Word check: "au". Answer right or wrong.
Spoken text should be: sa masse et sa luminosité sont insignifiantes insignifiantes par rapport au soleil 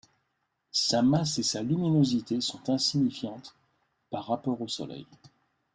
right